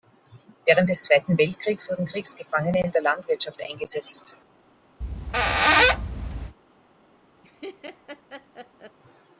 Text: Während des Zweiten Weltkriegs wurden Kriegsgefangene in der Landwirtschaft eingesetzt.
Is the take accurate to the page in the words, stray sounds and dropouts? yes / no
no